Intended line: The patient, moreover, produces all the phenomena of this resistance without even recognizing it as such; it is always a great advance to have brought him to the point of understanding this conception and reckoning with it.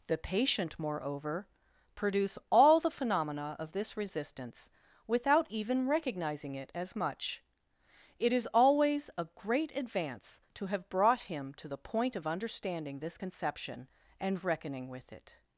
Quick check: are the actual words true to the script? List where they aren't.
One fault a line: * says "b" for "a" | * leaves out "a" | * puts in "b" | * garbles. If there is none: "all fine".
* says "produce" for "produces"
* says "much" for "such"